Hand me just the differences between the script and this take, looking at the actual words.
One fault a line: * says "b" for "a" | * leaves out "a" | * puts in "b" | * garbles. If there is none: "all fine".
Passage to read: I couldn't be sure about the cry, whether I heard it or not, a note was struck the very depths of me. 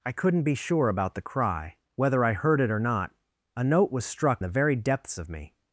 all fine